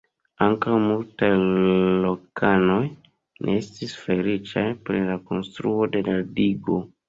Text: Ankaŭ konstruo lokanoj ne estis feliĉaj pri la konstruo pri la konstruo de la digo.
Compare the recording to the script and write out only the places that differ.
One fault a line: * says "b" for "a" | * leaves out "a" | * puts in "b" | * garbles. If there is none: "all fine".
* says "multaj" for "konstruo"
* leaves out "pri la konstruo"